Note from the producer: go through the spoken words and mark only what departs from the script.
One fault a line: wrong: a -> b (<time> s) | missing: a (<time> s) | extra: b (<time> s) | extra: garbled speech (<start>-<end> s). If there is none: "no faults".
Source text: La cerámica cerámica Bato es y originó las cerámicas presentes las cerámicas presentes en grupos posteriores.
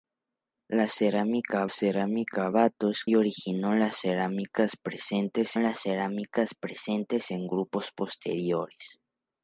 no faults